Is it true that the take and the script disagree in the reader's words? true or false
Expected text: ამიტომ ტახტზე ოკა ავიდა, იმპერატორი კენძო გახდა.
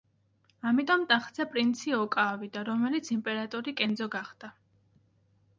true